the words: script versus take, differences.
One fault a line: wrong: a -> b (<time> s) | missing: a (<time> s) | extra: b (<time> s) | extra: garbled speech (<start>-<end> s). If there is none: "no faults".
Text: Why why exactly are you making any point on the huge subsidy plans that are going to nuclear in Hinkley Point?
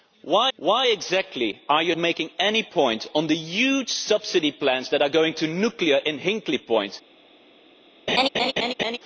no faults